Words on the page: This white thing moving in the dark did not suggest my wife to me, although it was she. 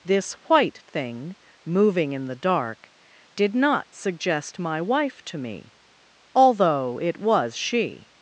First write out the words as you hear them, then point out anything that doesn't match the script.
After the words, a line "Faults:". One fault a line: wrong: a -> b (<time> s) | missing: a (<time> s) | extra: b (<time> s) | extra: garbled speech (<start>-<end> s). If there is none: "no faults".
This white thing moving in the dark did not suggest my wife to me, although it was she.
Faults:
no faults